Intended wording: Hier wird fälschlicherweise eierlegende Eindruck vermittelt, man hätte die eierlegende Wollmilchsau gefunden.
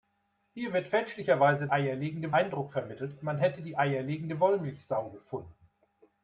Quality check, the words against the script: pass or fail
pass